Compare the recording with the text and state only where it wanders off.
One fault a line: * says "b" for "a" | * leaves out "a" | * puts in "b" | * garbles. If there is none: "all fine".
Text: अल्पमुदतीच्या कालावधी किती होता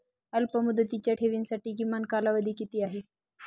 * puts in "ठेवींसाठी किमान"
* says "आहे" for "होता"